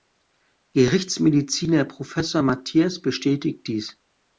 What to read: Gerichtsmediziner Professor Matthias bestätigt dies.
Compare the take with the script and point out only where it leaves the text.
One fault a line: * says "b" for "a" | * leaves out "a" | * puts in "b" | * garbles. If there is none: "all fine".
all fine